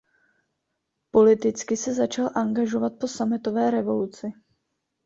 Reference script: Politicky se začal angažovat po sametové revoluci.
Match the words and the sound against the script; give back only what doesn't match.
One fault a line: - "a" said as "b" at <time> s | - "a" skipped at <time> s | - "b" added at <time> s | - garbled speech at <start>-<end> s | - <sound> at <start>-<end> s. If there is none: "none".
none